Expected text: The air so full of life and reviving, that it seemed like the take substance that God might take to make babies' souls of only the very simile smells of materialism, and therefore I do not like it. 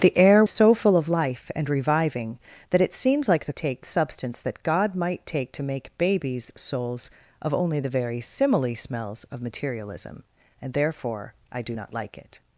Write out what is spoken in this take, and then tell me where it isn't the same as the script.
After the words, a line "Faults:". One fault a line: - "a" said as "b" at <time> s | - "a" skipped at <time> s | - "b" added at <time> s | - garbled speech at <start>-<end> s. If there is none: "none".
The air so full of life and reviving, that it seemed like the take substance that God might take to make babies' souls of only the very simile smells of materialism, and therefore I do not like it.
Faults:
none